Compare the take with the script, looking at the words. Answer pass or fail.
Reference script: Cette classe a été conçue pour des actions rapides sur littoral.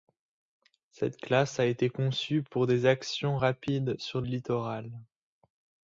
pass